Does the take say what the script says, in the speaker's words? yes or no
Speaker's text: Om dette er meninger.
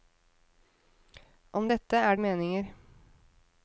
yes